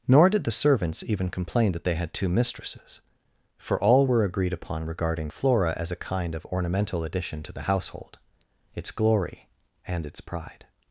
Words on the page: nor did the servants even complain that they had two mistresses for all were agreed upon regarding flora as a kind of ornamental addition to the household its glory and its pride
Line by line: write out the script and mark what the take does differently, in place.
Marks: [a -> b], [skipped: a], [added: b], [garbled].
nor did the servants even complain that they had two mistresses for all were agreed upon regarding flora as a kind of ornamental addition to the household its glory and its pride